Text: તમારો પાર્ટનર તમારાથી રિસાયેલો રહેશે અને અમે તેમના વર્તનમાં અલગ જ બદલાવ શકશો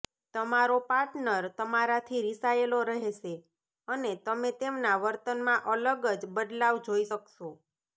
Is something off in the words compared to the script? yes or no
yes